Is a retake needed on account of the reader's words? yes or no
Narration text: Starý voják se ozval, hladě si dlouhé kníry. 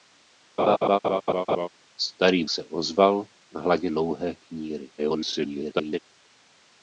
yes